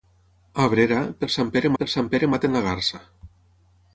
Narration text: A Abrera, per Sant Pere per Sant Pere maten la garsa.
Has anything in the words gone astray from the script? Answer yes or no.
no